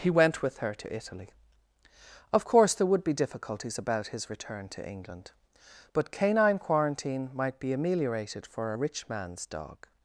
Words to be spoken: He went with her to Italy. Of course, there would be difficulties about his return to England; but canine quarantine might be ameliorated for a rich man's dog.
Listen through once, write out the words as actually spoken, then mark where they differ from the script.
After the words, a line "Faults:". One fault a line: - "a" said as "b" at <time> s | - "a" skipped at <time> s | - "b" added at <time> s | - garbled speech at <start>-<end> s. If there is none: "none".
He went with her to Italy. Of course, there would be difficulties about his return to England; but canine quarantine might be ameliorated for a rich man's dog.
Faults:
none